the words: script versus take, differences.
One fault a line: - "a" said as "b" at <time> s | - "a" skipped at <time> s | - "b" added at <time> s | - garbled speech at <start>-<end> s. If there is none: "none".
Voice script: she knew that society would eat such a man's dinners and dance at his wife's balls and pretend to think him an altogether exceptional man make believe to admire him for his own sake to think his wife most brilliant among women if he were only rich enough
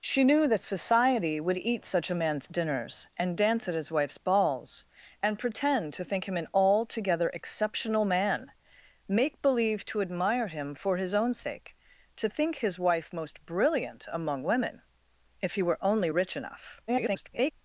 - garbled speech at 16.9-17.5 s